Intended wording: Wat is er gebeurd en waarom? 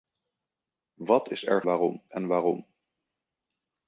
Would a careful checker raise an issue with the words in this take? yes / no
yes